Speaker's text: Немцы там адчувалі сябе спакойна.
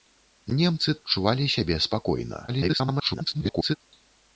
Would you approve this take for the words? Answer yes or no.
no